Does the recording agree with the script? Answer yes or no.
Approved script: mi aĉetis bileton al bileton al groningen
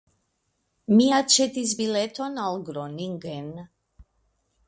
no